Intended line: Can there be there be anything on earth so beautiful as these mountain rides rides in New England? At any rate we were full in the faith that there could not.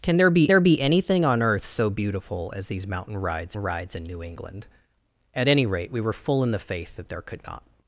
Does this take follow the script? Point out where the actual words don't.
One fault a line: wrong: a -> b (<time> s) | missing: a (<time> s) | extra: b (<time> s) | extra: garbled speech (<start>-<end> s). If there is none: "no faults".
no faults